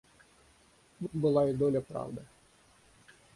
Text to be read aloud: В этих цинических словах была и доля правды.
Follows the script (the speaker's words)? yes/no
no